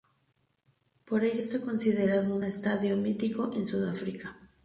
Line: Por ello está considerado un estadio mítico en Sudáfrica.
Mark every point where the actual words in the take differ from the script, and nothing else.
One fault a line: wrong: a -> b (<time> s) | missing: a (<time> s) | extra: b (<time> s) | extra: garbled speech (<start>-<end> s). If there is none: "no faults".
no faults